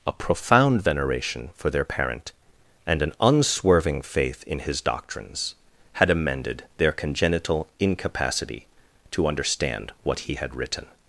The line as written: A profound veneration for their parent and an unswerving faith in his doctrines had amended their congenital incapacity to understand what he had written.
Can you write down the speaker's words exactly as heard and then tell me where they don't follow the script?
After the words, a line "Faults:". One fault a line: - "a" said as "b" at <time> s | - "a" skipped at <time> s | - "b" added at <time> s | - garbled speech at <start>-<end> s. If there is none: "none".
A profound veneration for their parent and an unswerving faith in his doctrines had amended their congenital incapacity to understand what he had written.
Faults:
none